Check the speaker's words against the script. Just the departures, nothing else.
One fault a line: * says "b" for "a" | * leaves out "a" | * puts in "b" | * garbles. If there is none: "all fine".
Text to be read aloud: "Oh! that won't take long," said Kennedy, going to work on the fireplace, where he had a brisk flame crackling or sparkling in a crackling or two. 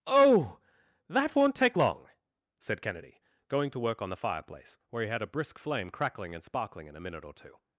* says "and" for "or"
* says "minute" for "crackling"